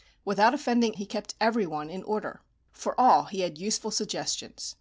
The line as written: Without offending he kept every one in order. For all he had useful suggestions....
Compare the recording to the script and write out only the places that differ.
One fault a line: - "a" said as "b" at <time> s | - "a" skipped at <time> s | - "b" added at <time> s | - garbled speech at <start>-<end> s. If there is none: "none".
none